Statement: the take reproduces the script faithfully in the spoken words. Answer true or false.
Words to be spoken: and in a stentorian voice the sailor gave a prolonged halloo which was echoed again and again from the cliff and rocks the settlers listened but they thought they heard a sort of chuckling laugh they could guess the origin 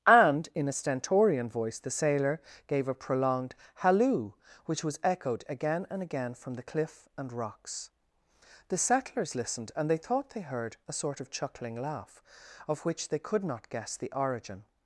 false